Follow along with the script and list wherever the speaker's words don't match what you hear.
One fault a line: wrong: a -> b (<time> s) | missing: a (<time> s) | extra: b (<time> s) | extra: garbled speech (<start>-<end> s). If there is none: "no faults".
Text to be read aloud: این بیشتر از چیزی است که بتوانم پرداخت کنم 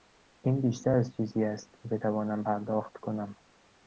no faults